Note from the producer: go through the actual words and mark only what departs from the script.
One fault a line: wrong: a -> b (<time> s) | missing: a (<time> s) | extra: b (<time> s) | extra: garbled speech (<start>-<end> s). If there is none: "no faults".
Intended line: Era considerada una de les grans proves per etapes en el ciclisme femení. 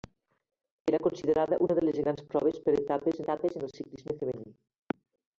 extra: etapes (3.2 s)